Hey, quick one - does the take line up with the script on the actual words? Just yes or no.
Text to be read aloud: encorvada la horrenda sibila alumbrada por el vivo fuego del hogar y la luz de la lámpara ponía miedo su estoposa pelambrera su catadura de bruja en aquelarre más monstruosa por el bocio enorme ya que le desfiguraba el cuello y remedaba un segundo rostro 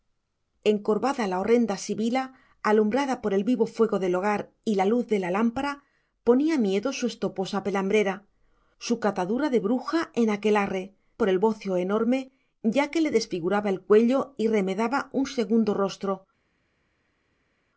no